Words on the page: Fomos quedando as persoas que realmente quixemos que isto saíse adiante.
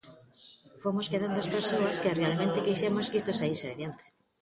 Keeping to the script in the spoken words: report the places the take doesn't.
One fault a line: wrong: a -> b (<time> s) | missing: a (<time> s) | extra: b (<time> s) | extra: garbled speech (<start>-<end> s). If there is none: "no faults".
no faults